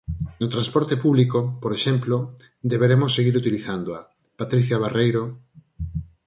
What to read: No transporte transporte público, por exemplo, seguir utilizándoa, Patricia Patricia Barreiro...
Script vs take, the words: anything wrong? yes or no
yes